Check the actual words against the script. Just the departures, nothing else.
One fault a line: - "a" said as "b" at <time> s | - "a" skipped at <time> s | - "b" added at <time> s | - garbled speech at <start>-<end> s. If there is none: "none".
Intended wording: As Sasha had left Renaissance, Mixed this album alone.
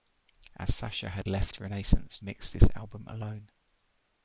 none